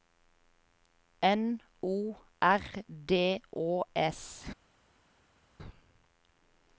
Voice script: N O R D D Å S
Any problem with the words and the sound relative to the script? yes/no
yes